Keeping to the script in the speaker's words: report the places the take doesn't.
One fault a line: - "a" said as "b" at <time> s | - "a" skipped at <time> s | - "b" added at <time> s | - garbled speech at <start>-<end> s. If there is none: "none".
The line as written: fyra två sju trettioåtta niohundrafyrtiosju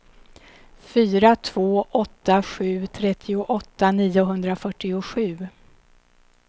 - "åtta" added at 1.9 s